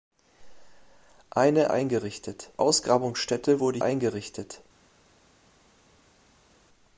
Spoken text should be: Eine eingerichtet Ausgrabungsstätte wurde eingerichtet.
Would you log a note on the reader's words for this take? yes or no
no